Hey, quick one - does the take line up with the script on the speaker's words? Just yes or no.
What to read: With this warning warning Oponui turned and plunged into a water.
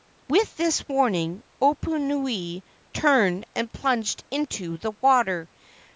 no